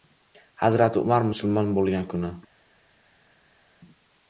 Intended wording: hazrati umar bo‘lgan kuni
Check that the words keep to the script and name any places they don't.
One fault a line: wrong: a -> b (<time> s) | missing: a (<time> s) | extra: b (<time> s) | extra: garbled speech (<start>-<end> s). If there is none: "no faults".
extra: musulmon (1.3 s)